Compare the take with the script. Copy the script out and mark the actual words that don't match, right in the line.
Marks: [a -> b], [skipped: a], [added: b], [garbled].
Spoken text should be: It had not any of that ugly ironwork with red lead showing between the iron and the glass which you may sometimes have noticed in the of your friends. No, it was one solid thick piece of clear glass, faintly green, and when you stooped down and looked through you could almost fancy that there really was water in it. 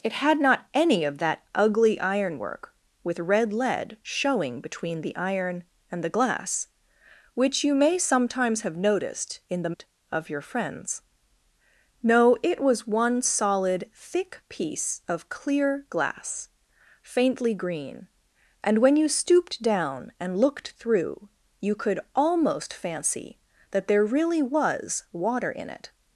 It had not any of that ugly ironwork with red lead showing between the iron and the glass which you may sometimes have noticed in the of your friends. No, it was one solid thick piece of clear glass, faintly green, and when you stooped down and looked through you could almost fancy that there really was water in it.